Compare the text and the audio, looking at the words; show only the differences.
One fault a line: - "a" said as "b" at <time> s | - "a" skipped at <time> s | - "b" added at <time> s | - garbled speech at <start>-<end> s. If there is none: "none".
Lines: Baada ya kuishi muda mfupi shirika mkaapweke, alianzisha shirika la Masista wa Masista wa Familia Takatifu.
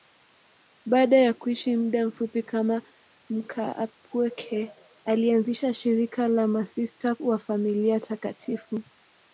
- "shirika" said as "kama" at 2.4 s
- "Masista wa" skipped at 7.4 s